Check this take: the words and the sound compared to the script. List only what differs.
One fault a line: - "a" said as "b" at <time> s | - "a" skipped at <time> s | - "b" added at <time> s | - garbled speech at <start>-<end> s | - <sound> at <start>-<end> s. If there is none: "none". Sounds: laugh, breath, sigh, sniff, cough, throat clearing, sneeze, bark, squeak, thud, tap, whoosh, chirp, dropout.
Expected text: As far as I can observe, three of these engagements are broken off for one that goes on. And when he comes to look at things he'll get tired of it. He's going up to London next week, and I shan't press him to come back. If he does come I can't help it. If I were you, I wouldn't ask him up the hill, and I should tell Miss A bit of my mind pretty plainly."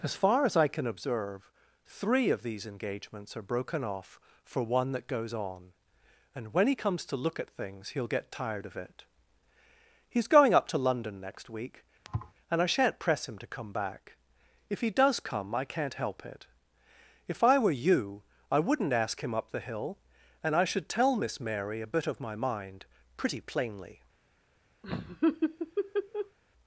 - thud at 12.0-12.3 s
- "Mary" added at 21.4 s
- laugh at 24.8-26.4 s